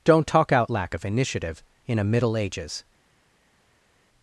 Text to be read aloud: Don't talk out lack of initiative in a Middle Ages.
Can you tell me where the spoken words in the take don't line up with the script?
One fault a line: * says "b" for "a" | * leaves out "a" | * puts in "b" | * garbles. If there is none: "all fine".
all fine